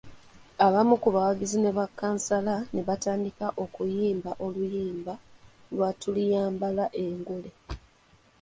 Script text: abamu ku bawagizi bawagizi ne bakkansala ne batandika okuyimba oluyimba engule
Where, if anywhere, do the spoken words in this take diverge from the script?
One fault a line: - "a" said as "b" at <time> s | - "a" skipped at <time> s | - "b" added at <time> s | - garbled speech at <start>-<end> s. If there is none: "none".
- "bawagizi" skipped at 1.6 s
- "lwa tuliyambala" added at 5.7 s